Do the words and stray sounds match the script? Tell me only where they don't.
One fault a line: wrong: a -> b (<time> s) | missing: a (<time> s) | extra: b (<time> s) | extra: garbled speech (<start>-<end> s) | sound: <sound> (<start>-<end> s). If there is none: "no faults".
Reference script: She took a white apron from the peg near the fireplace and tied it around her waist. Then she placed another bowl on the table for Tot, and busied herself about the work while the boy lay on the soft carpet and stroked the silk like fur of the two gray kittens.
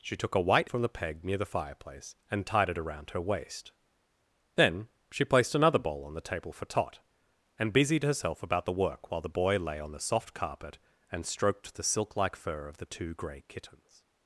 missing: apron (0.7 s)